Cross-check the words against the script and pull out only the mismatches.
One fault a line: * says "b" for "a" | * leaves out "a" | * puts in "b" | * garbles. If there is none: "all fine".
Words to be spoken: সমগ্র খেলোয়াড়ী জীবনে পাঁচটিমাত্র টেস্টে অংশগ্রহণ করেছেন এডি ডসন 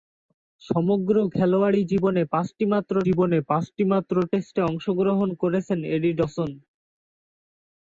* puts in "জীবনে পাঁচটিমাত্র"